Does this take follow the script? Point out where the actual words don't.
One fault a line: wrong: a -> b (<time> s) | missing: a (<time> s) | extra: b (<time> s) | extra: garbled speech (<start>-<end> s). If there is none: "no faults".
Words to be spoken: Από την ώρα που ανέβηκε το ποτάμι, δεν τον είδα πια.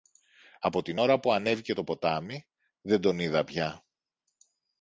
no faults